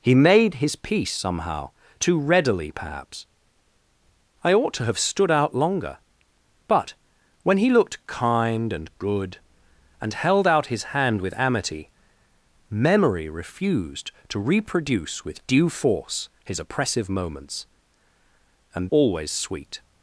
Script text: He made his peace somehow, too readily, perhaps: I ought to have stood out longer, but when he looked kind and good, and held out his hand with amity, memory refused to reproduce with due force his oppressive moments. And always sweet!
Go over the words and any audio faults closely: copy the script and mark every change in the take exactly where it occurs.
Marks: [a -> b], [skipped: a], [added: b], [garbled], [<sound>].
He made his peace somehow, too readily, perhaps: I ought to have stood out longer, but when he looked kind and good, and held out his hand with amity, memory refused to reproduce with due force his oppressive moments. And always sweet!